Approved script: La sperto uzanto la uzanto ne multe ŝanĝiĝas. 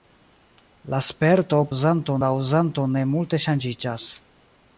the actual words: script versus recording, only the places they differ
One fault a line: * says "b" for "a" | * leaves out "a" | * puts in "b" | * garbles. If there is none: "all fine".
all fine